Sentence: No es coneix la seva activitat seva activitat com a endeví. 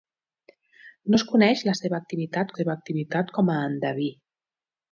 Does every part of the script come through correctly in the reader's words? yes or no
yes